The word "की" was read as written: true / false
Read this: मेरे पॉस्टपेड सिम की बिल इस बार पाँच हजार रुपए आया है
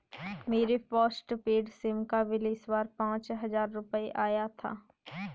false